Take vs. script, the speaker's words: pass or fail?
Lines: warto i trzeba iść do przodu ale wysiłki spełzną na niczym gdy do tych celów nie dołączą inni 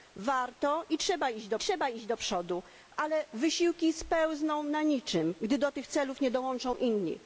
fail